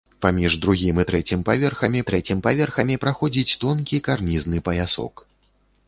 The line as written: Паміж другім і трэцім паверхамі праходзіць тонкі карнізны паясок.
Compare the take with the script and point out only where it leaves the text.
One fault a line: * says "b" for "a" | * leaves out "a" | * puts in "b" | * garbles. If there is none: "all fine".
* puts in "трэцім паверхамі"